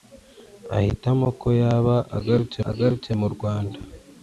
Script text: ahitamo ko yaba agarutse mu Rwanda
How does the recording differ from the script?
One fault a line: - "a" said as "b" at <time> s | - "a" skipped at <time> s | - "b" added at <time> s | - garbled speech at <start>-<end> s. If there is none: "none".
- "agarutse" added at 2.7 s